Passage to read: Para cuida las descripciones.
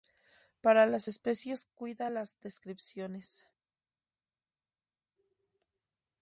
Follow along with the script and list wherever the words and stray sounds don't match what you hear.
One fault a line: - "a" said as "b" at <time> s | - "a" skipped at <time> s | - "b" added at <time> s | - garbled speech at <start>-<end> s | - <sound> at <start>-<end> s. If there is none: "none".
- "las especies" added at 0.9 s